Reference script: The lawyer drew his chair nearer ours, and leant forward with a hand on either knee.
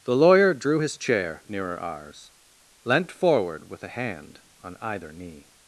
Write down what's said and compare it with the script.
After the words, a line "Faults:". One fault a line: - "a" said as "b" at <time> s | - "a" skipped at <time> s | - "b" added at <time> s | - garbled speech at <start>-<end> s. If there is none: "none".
The lawyer drew his chair nearer ours, leant forward with a hand on either knee.
Faults:
- "and" skipped at 2.3 s